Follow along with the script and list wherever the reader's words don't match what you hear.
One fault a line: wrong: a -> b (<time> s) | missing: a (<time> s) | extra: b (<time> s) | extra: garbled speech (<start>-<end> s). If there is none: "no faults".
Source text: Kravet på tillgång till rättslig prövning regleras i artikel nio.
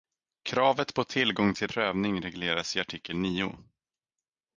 missing: rättslig (1.7 s)